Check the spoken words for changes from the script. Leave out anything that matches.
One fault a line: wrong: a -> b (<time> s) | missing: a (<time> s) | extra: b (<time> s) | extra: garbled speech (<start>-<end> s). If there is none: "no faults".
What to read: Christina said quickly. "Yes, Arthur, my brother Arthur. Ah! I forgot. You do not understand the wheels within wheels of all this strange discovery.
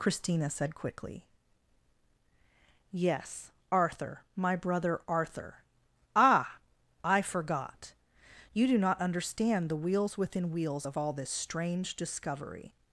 no faults